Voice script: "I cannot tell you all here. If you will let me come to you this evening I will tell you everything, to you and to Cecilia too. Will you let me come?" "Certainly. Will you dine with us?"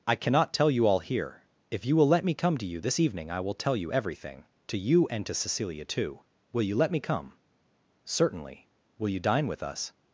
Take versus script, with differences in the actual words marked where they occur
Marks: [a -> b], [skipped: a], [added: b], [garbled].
"I cannot tell you all here. If you will let me come to you this evening I will tell you everything, to you and to Cecilia too. Will you let me come?" "Certainly. Will you dine with us?"